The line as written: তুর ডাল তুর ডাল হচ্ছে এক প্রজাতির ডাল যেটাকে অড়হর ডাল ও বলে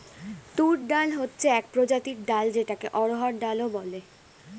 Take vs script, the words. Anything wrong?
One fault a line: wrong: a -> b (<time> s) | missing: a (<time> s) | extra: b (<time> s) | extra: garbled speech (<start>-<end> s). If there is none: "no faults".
missing: তুর ডাল (1.1 s)